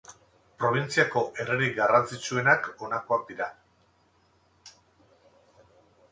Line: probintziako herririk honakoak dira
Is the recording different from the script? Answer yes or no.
yes